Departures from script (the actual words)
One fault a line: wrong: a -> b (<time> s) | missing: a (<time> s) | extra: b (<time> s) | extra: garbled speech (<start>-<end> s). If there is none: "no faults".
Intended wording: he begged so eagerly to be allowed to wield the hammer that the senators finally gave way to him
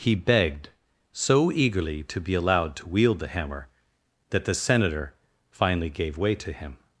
wrong: senators -> senator (4.5 s)